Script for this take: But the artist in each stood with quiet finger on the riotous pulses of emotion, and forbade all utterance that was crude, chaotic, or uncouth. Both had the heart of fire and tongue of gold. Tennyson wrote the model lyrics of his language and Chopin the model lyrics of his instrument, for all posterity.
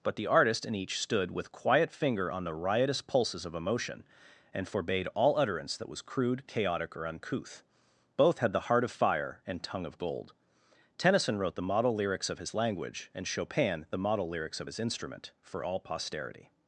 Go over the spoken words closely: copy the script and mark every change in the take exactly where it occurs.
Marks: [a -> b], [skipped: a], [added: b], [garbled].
But the artist in each stood with quiet finger on the riotous pulses of emotion, and forbade all utterance that was crude, chaotic, or uncouth. Both had the heart of fire and tongue of gold. Tennyson wrote the model lyrics of his language and Chopin the model lyrics of his instrument, for all posterity.